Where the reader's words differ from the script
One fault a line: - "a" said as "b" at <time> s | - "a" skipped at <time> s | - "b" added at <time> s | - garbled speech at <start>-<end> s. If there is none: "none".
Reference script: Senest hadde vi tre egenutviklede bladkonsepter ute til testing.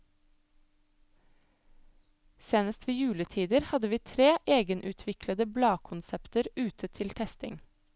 - "ved juletider" added at 2.9 s